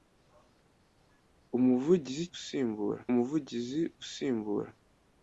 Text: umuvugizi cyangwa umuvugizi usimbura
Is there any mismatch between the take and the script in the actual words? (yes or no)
yes